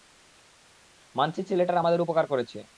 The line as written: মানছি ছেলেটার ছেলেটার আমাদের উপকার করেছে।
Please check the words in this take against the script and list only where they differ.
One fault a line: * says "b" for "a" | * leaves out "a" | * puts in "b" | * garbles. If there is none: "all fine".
* leaves out "ছেলেটার"